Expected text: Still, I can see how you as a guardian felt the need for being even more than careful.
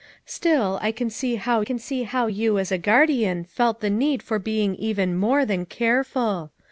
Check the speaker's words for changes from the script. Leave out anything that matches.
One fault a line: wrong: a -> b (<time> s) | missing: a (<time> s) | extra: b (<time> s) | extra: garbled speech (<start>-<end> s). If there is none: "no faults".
extra: can see how (1.6 s)